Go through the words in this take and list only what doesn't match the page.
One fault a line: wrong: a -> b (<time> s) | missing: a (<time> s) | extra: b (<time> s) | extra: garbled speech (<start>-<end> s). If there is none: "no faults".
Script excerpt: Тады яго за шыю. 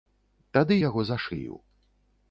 no faults